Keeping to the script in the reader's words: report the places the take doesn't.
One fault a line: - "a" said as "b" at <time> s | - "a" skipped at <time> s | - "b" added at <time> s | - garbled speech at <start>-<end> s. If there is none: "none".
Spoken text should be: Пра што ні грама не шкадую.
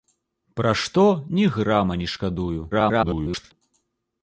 - garbled speech at 2.7-3.5 s